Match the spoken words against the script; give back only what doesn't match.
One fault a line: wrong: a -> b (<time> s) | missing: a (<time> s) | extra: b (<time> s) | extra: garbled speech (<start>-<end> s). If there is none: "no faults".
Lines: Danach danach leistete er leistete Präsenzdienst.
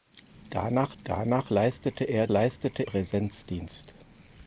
no faults